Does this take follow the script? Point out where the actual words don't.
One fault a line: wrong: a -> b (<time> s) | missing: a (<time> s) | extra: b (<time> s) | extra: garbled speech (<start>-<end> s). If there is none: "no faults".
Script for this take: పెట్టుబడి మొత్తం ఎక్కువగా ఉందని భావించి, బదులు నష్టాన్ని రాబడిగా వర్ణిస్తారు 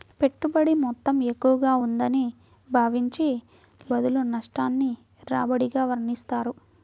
no faults